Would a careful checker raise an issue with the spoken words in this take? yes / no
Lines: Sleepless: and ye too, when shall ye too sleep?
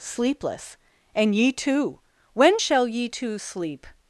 no